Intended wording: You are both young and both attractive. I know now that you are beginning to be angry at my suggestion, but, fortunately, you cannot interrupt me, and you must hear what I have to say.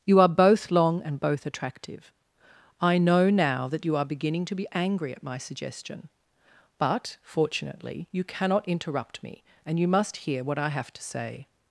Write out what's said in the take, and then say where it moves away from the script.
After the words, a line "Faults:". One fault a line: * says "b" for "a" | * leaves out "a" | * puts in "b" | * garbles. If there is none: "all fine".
You are both long and both attractive. I know now that you are beginning to be angry at my suggestion, but, fortunately, you cannot interrupt me, and you must hear what I have to say.
Faults:
* says "long" for "young"